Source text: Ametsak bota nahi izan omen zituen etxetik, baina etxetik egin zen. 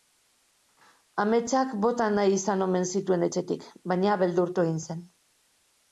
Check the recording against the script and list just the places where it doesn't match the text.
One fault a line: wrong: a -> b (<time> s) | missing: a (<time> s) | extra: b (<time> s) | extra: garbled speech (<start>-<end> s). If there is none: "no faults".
wrong: etxetik -> beldurtu (4.2 s)